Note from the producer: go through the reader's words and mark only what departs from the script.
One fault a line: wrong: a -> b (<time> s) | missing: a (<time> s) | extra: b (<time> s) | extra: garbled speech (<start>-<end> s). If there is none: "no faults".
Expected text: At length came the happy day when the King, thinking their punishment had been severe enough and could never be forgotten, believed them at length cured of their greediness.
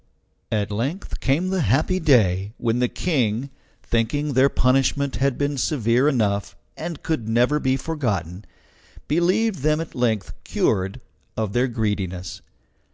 no faults